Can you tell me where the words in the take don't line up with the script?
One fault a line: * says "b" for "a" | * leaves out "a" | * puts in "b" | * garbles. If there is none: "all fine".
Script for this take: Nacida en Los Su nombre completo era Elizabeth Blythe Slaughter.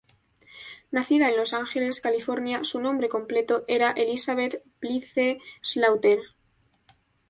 * puts in "Ángeles California"